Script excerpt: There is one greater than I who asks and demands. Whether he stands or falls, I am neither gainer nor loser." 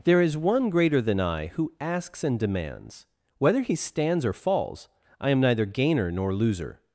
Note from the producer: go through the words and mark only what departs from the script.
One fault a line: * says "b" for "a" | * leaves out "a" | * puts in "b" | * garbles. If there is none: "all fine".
all fine